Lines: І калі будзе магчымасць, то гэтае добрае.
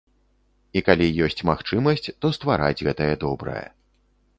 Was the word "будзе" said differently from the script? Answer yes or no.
yes